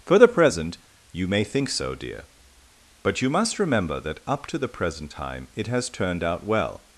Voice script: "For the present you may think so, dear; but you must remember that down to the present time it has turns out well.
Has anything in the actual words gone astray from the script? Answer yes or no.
yes